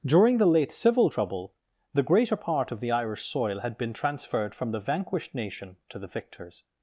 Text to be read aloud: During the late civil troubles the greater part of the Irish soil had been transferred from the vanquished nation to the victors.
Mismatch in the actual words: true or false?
true